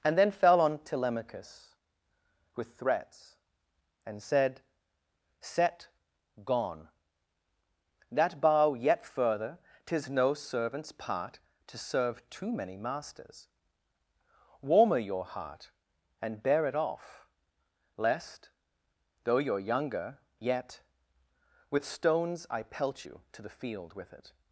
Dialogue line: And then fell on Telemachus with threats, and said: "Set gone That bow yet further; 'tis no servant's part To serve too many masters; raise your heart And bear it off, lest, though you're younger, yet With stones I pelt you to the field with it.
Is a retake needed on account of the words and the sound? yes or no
yes